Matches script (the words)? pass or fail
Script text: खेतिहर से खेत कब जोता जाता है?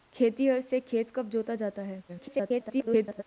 fail